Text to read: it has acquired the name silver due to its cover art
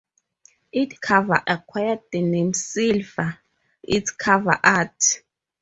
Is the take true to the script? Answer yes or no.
no